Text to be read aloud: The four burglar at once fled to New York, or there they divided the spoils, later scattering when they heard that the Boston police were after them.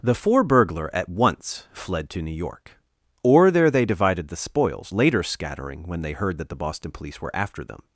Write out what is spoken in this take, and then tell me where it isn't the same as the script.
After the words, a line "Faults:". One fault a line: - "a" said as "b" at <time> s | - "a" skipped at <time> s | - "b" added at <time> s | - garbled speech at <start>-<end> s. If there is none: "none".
The four burglar at once fled to New York, or there they divided the spoils, later scattering when they heard that the Boston police were after them.
Faults:
none